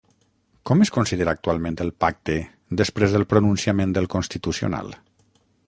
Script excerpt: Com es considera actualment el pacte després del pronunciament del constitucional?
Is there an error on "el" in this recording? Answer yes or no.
no